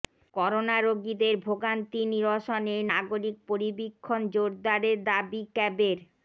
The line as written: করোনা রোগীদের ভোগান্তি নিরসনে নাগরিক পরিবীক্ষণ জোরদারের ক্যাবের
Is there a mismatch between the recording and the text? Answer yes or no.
yes